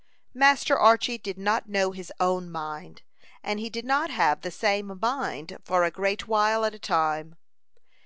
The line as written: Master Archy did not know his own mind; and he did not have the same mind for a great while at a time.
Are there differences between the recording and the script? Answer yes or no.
no